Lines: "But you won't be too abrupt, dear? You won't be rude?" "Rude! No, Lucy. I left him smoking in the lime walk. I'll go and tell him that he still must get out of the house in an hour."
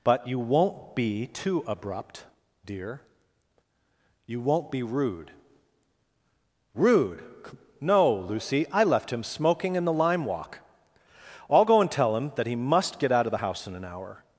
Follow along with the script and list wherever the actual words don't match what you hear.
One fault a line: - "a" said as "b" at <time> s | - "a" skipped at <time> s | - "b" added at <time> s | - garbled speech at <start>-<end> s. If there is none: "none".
- "still" skipped at 12.6 s